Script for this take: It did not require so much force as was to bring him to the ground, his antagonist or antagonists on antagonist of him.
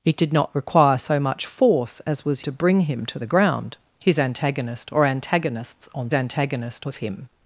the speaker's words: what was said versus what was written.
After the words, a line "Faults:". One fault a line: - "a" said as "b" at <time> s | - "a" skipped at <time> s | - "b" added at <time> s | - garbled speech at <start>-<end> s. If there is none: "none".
It did not require so much force as was to bring him to the ground, his antagonist or antagonists on antagonist of him.
Faults:
none